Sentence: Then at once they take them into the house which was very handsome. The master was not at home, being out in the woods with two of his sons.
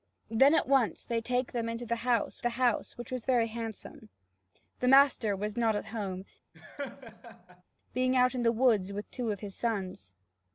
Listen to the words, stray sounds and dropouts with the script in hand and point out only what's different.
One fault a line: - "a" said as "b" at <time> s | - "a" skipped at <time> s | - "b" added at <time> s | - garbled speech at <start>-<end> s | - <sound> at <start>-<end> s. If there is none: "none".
- "the house" added at 2.4 s
- laugh at 6.5-7.6 s